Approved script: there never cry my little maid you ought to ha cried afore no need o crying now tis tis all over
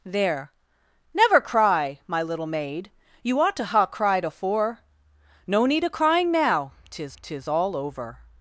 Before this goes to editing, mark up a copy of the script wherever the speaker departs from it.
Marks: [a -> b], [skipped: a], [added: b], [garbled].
there never cry my little maid you ought to ha cried afore no need o crying now tis tis all over